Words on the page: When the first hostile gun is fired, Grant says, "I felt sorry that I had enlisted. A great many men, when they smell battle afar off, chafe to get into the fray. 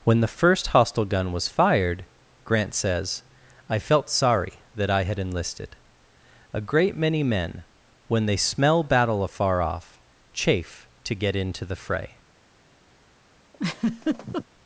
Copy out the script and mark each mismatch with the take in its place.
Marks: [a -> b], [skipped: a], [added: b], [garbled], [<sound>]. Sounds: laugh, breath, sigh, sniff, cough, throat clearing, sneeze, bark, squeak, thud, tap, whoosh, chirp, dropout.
When the first hostile gun [is -> was] fired, Grant says, "I felt sorry that I had enlisted. A great many men, when they smell battle afar off, chafe to get into the fray. [laugh]